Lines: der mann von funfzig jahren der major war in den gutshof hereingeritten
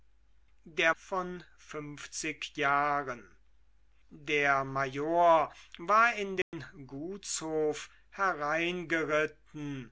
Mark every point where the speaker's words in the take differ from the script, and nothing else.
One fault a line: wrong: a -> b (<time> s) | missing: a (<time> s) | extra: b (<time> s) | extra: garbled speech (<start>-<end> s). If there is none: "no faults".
missing: mann (0.9 s)